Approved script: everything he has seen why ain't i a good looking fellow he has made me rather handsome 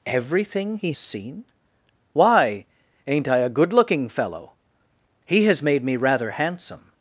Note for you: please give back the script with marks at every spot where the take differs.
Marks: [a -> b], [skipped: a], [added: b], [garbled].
everything he [skipped: has] seen why ain't i a good looking fellow he has made me rather handsome